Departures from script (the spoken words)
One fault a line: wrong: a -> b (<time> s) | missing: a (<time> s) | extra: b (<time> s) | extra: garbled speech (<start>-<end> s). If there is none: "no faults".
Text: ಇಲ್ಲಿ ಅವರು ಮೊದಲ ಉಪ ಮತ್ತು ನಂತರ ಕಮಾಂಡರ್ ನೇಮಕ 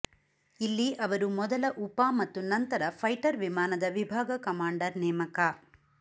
extra: ಫೈಟರ್ ವಿಮಾನದ ವಿಭಾಗ (3.0 s)